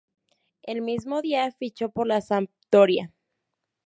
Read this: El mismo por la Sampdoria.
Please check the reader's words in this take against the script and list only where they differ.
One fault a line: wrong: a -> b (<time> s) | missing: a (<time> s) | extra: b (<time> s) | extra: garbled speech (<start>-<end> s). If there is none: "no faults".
extra: día fichó (1.2 s)